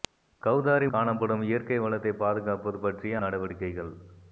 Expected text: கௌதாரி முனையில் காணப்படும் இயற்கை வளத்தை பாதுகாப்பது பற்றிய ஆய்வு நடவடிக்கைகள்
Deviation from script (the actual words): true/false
true